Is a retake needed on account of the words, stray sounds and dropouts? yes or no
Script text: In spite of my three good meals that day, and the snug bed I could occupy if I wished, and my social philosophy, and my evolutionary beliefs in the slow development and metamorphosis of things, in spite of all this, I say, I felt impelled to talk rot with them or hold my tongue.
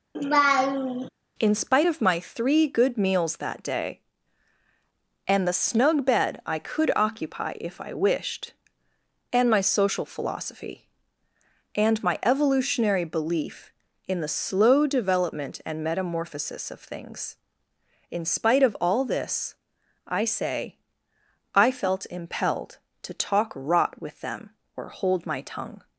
yes